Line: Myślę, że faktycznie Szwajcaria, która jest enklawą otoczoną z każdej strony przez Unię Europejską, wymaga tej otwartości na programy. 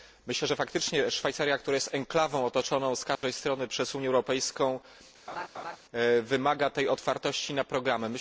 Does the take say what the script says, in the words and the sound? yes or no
no